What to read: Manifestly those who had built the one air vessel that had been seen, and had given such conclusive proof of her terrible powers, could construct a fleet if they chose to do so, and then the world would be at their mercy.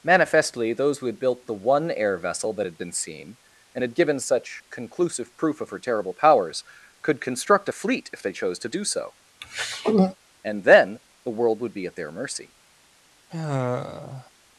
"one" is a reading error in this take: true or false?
false